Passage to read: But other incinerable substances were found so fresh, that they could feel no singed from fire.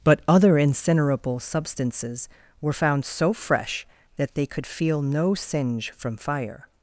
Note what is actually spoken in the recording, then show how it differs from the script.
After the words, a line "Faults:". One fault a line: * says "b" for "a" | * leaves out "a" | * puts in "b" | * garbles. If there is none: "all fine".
But other incinerable substances were found so fresh, that they could feel no singe from fire.
Faults:
* says "singe" for "singed"